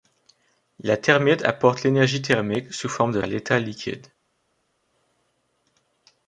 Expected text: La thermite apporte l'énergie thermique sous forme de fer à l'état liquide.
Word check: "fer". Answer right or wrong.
wrong